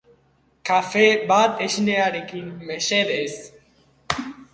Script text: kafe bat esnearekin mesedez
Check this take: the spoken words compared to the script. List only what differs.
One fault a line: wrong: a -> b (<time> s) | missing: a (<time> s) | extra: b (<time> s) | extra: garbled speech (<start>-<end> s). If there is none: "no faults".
no faults